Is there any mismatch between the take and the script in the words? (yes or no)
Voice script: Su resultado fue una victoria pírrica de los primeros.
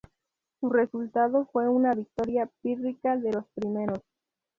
no